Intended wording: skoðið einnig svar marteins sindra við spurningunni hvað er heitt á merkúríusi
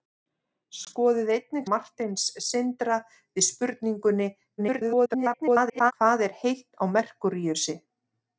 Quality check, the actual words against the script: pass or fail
fail